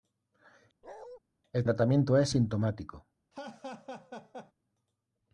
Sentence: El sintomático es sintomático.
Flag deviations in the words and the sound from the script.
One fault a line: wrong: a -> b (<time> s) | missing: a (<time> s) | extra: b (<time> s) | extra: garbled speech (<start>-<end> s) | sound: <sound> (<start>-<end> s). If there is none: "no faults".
sound: bark (0.8-1.2 s)
wrong: sintomático -> tratamiento (1.6 s)
sound: laugh (3.3-4.5 s)